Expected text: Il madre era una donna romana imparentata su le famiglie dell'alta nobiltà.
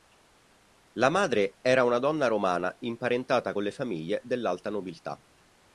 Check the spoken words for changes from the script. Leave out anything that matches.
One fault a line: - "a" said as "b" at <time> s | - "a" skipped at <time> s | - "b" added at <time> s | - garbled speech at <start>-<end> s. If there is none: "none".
- "Il" said as "La" at 0.9 s
- "su" said as "con" at 3.5 s